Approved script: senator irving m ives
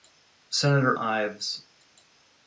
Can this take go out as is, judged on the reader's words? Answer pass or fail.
fail